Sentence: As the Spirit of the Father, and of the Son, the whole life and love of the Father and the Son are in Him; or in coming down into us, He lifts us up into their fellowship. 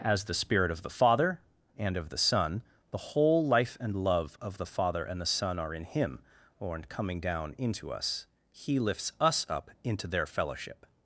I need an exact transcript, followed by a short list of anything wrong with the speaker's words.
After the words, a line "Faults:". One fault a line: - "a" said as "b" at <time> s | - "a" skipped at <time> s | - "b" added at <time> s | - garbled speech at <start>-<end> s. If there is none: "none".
As the Spirit of the Father, and of the Son, the whole life and love of the Father and the Son are in Him; or in coming down into us, He lifts us up into their fellowship.
Faults:
none